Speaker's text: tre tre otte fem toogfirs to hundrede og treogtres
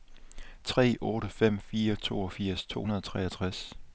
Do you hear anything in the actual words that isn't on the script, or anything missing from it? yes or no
yes